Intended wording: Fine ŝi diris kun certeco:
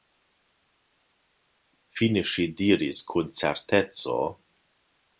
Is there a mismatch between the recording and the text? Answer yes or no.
no